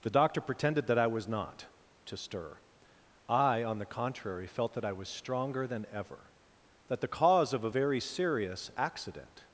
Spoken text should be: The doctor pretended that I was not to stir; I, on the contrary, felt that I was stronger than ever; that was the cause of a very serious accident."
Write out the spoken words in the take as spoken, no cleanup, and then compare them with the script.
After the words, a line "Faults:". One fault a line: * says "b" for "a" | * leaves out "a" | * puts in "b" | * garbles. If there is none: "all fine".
The doctor pretended that I was not to stir; I, on the contrary, felt that I was stronger than ever; that the cause of a very serious accident."
Faults:
* leaves out "was"